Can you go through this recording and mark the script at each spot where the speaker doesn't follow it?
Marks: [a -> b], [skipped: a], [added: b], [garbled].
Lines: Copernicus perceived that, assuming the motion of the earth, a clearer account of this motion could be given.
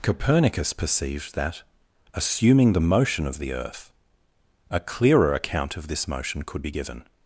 Copernicus perceived that, assuming the motion of the earth, a clearer account of this motion could be given.